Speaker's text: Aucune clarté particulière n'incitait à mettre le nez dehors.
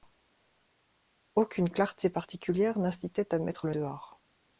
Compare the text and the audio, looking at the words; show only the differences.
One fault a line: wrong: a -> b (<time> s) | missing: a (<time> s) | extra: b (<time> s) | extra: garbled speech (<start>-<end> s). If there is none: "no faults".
missing: nez (3.7 s)